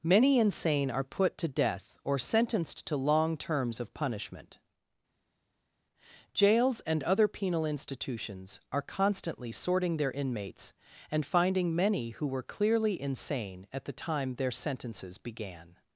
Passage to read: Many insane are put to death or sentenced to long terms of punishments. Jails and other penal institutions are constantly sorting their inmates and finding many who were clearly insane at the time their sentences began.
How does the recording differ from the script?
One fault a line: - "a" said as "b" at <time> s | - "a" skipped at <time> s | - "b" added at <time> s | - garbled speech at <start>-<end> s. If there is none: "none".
- "punishments" said as "punishment" at 3.9 s